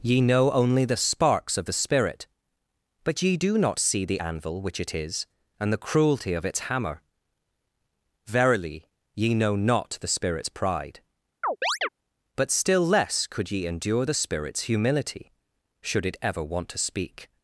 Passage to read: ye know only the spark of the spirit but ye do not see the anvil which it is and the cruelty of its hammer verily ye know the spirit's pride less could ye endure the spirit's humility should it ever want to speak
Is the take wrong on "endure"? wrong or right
right